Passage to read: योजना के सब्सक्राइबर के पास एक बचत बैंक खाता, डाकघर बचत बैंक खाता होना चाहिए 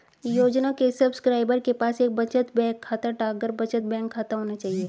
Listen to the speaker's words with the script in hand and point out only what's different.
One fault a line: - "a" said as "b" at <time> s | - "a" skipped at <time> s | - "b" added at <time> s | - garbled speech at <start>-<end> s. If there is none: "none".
none